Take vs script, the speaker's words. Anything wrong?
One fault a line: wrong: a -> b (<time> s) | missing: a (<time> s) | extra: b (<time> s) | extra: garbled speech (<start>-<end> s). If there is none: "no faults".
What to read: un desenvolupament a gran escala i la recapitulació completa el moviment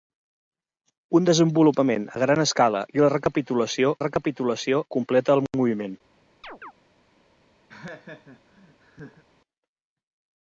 extra: recapitulació (4.1 s)